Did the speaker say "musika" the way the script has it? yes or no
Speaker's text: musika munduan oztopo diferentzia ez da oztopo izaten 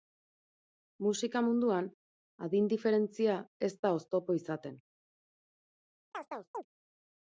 yes